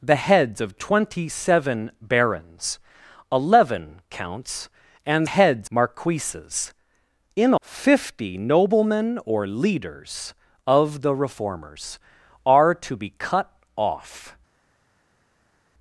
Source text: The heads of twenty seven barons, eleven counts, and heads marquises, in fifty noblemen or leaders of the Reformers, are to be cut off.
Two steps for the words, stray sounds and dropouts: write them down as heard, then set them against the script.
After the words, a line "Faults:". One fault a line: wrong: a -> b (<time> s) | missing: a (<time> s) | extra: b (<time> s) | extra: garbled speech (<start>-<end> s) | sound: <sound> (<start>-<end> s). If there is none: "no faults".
The heads of twenty seven barons, eleven counts, and heads marquises, in fifty noblemen or leaders of the Reformers, are to be cut off.
Faults:
no faults